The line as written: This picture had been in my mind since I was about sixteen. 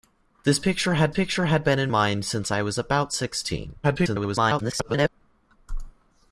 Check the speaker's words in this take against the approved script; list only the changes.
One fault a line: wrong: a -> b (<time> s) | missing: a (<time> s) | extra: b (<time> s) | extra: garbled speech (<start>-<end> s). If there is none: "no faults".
extra: picture had (1.1 s)
missing: my (1.9 s)
extra: garbled speech (3.8-5.1 s)